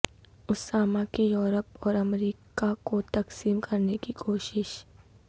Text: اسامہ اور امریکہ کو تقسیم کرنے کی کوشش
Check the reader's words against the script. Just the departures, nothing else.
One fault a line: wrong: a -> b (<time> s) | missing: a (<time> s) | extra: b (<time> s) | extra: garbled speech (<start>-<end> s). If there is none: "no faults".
extra: کی یورپ (1.1 s)